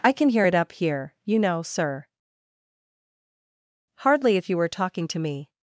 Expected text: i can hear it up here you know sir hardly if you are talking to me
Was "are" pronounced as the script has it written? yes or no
no